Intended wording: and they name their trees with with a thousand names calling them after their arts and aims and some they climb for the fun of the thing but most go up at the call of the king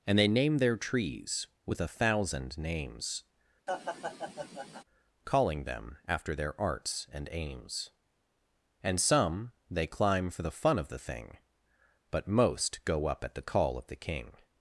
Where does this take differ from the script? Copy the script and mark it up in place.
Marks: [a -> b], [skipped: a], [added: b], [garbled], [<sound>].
and they name their trees with [skipped: with] a thousand names [laugh] calling them after their arts and aims and some they climb for the fun of the thing but most go up at the call of the king